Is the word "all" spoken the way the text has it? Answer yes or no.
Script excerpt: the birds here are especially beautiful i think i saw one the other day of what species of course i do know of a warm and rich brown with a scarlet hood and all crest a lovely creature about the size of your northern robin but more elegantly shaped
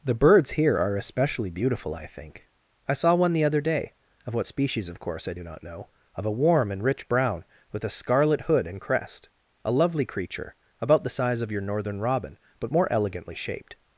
no